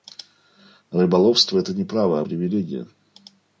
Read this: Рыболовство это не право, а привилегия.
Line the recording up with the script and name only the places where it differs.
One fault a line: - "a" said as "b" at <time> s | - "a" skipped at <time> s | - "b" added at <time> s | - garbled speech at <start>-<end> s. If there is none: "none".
none